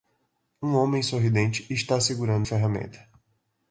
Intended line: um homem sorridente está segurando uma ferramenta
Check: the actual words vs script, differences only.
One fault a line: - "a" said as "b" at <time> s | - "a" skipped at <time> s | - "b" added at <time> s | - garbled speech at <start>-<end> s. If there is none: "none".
- "uma" skipped at 2.5 s